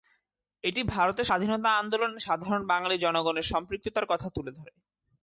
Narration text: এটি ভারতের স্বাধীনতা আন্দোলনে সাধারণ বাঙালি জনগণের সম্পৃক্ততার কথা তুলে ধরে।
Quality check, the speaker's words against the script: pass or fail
pass